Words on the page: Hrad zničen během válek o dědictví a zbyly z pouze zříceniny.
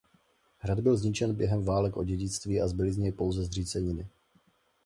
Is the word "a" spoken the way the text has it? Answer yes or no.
yes